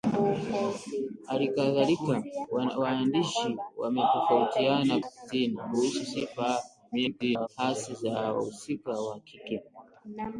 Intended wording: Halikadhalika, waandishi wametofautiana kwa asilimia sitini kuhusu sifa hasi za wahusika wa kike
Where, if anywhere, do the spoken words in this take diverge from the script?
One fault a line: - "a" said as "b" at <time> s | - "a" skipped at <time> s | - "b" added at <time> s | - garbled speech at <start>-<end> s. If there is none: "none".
- "kwa asilimia" skipped at 5.0 s
- garbled speech at 6.9-7.5 s